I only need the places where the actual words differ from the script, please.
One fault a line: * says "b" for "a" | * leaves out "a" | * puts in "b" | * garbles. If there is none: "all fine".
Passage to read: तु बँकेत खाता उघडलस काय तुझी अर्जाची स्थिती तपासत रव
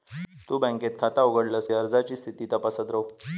* leaves out "काय तुझी"